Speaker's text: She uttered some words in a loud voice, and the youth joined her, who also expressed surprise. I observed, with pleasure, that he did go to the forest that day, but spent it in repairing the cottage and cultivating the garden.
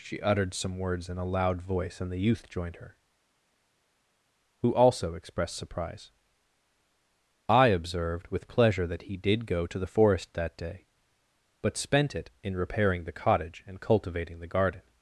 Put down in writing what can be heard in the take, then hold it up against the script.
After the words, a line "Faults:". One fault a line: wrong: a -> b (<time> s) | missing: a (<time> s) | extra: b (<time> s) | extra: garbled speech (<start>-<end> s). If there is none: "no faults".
She uttered some words in a loud voice, and the youth joined her, who also expressed surprise. I observed, with pleasure, that he did go to the forest that day, but spent it in repairing the cottage and cultivating the garden.
Faults:
no faults